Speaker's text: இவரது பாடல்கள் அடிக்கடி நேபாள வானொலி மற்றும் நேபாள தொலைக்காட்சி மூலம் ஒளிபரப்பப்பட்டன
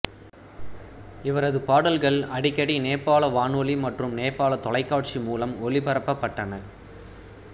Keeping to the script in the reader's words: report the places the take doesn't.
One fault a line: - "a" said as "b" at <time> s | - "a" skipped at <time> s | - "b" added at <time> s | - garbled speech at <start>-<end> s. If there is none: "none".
none